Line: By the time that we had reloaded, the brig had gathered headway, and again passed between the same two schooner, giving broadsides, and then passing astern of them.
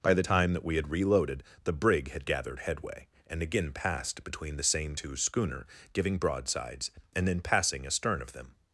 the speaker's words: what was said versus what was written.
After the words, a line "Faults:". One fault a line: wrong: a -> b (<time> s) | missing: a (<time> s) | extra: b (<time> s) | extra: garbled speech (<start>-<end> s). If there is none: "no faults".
By the time that we had reloaded, the brig had gathered headway, and again passed between the same two schooner, giving broadsides, and then passing astern of them.
Faults:
no faults